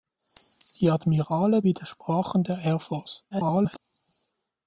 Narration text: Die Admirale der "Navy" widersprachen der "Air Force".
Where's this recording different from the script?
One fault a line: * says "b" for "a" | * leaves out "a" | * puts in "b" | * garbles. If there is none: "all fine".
* leaves out "der Navy"
* garbles